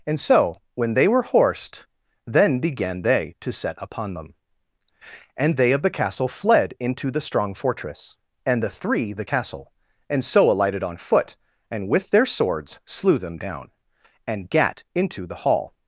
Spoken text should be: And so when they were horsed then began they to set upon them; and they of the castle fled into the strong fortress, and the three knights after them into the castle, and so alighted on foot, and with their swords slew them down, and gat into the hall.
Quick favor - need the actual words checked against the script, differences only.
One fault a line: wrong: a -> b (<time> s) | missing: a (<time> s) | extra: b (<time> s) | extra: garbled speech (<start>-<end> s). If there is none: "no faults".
missing: knights after them into (9.1 s)